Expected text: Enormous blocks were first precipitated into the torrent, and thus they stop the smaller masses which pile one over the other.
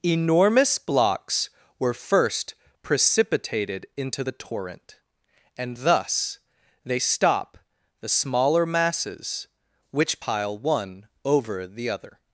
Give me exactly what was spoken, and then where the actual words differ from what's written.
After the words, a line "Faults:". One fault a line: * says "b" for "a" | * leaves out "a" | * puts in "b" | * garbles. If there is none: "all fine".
Enormous blocks were first precipitated into the torrent, and thus they stop the smaller masses which pile one over the other.
Faults:
all fine